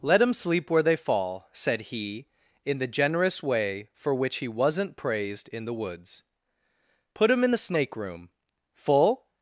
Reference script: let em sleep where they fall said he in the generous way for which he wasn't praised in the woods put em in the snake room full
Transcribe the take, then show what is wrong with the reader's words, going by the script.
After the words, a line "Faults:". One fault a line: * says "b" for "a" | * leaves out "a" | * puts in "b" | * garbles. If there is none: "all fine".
let em sleep where they fall said he in the generous way for which he wasn't praised in the woods put em in the snake room full
Faults:
all fine